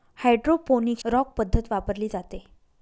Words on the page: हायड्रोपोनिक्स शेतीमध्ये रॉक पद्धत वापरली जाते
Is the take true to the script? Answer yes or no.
no